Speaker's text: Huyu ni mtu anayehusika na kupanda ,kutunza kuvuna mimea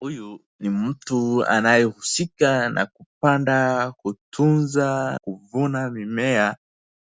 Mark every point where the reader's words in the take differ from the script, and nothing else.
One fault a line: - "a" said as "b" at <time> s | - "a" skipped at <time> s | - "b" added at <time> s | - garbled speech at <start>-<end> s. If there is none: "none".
none